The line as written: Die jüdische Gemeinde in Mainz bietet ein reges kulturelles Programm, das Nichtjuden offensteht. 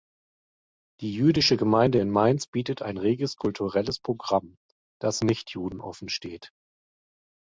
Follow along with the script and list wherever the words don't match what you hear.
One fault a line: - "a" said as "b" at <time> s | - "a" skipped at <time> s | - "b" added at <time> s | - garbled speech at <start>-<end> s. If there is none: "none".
none